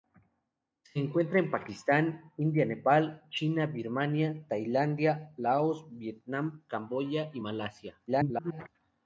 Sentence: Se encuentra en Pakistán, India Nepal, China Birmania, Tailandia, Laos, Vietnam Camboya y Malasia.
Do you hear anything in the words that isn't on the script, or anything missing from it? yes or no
yes